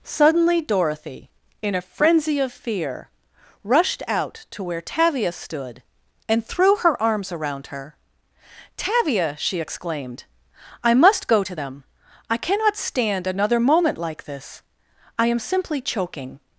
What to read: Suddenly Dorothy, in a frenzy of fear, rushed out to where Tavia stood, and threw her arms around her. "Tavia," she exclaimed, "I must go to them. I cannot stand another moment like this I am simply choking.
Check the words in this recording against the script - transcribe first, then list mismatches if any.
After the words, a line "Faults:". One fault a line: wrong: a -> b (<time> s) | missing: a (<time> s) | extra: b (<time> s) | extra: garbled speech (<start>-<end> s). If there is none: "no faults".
Suddenly Dorothy, in a frenzy of fear, rushed out to where Tavia stood, and threw her arms around her. "Tavia," she exclaimed, "I must go to them. I cannot stand another moment like this I am simply choking.
Faults:
no faults